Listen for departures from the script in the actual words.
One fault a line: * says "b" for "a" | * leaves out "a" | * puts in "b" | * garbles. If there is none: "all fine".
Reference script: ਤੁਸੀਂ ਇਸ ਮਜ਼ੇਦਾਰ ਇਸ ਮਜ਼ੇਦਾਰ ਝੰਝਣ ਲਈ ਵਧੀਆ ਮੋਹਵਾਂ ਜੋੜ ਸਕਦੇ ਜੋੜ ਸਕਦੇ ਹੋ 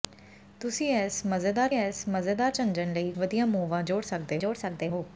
all fine